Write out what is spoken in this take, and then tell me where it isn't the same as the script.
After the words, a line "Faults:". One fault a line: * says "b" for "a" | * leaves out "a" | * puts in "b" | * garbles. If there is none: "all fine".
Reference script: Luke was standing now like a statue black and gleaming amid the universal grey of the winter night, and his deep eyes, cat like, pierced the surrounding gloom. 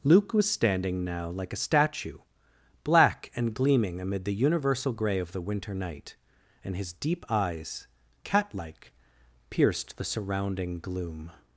Luke was standing now like a statue black and gleaming amid the universal grey of the winter night, and his deep eyes, cat like, pierced the surrounding gloom.
Faults:
all fine